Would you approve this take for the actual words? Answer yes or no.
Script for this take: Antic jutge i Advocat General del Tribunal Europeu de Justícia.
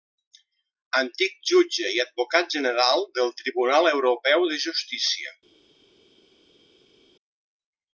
yes